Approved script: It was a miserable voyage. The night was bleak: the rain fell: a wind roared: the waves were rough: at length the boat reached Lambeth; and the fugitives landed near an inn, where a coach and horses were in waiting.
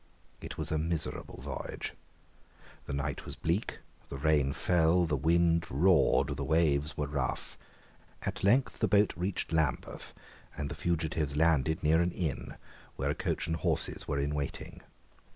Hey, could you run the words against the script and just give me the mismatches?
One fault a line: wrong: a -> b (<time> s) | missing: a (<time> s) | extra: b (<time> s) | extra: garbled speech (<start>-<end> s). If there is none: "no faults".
wrong: a -> the (5.0 s)